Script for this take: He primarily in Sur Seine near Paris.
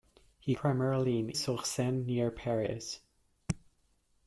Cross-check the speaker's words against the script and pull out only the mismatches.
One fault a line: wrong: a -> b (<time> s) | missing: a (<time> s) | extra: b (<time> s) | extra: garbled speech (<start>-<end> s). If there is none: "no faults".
no faults